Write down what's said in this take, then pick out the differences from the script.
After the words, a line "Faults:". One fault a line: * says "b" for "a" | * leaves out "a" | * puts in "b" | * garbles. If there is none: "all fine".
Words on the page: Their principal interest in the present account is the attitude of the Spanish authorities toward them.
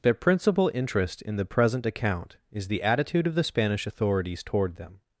Their principal interest in the present account is the attitude of the Spanish authorities toward them.
Faults:
all fine